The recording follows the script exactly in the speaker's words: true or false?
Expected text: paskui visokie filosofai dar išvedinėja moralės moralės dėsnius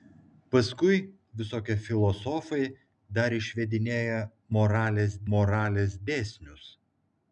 true